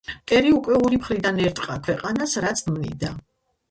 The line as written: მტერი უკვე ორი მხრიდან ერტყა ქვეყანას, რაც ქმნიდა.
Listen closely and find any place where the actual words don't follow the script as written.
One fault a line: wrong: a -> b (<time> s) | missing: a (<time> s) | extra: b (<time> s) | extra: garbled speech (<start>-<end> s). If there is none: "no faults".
no faults